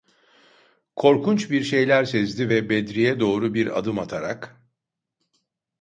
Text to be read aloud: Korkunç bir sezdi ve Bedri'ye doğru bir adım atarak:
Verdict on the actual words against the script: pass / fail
fail